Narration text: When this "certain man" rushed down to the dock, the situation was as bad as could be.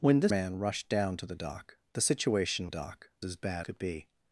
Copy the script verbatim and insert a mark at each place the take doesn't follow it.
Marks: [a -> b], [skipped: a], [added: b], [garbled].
When this [skipped: "certain] man" rushed down to the dock, the situation [was -> dock] as bad [skipped: as] could be.